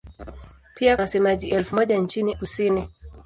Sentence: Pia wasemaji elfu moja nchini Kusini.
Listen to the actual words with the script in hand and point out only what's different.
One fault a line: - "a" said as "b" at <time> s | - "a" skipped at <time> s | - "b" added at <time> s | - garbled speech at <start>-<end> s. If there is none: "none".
none